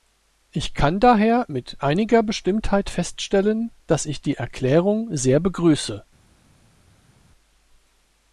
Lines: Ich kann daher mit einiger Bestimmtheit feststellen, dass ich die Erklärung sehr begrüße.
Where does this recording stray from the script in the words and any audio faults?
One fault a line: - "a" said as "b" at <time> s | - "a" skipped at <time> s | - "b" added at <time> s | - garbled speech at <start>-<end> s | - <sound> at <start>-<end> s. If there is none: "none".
none